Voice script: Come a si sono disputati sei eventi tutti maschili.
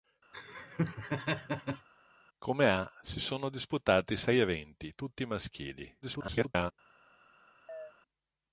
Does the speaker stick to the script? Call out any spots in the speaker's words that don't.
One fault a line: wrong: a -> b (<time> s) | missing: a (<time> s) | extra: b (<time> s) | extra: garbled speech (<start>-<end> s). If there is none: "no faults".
extra: garbled speech (6.0-6.7 s)